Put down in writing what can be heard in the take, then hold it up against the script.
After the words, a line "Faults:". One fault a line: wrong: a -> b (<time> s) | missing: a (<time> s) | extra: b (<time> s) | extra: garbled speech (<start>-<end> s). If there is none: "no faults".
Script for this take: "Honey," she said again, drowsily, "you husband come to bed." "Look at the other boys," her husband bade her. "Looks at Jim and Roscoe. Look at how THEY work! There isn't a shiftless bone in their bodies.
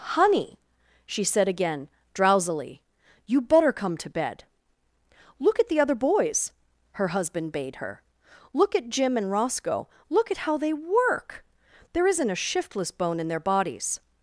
"Honey," she said again, drowsily, "you better come to bed." "Look at the other boys," her husband bade her. "Look at Jim and Roscoe. Look at how THEY work! There isn't a shiftless bone in their bodies.
Faults:
wrong: husband -> better (3.4 s)
wrong: Looks -> Look (8.5 s)